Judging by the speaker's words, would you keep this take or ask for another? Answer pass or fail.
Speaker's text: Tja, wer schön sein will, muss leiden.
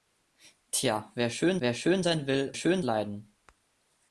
fail